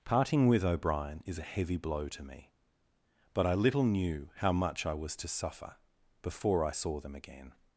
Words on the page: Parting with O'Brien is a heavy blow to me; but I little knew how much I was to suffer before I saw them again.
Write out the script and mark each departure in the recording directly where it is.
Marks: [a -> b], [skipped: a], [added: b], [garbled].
Parting with O'Brien is a heavy blow to me; but I little knew how much I was to suffer before I saw them again.